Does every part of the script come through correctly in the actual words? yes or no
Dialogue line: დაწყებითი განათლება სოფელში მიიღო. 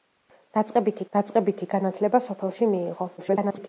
no